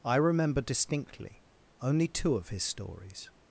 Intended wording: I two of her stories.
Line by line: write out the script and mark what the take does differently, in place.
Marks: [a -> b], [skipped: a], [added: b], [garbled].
I [added: remember distinctly only] two of [her -> his] stories.